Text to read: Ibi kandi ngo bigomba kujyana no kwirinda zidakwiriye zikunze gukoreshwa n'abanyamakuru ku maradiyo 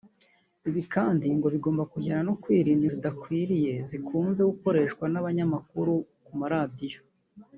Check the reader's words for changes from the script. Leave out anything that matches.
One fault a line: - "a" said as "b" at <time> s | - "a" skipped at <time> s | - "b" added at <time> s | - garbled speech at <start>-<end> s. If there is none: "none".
none